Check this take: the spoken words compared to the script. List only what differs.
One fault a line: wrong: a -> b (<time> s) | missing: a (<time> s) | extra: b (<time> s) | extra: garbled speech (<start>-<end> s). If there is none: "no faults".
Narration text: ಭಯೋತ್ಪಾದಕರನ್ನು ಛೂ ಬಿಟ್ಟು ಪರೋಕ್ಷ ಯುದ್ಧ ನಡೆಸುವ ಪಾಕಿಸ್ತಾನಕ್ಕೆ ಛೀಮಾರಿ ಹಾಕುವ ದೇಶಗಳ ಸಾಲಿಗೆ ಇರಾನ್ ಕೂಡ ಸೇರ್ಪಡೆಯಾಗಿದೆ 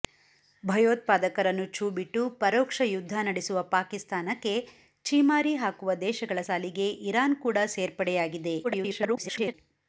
extra: garbled speech (8.6-9.5 s)